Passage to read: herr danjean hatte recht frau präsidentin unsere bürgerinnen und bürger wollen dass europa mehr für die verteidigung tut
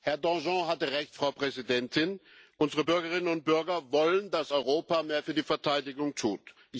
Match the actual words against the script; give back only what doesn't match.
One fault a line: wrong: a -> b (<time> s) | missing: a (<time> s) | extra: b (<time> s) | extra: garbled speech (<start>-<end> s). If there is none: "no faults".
no faults